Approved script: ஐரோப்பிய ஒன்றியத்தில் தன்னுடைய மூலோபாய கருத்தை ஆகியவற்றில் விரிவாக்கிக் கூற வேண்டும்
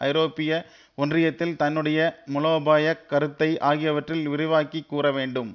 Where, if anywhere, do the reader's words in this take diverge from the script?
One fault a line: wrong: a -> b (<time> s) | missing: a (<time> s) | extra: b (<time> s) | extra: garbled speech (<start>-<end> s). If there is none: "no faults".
no faults